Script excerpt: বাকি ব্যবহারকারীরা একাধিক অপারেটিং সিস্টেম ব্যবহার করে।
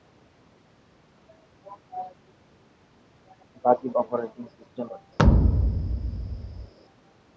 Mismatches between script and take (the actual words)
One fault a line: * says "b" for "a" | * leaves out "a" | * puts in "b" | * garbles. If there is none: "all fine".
* leaves out "ব্যবহারকারীরা একাধিক"
* leaves out "ব্যবহার"